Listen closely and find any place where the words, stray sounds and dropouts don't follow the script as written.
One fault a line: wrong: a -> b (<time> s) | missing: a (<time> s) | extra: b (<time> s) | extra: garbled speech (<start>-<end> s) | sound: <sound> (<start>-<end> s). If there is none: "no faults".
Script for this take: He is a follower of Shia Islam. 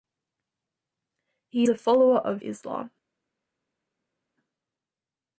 missing: is (1.7 s)
missing: Shia (2.4 s)